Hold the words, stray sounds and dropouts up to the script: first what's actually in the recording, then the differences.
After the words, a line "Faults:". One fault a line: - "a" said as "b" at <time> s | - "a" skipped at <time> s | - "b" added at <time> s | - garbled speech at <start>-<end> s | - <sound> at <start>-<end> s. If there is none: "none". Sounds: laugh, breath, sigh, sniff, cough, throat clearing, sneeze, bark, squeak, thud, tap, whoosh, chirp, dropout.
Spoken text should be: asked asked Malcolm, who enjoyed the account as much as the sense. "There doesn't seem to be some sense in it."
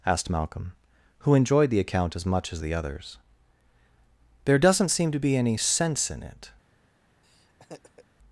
asked Malcolm, who enjoyed the account as much as the others. "There doesn't seem to be any sense in it."
Faults:
- "asked" skipped at 0.3 s
- "sense" said as "others" at 2.7 s
- "some" said as "any" at 5.4 s
- laugh at 7.2-8.1 s